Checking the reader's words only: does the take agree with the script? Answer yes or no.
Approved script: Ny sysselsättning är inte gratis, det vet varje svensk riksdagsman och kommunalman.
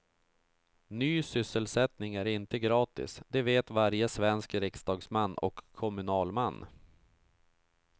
yes